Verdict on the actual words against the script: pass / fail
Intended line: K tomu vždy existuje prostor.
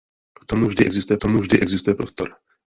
fail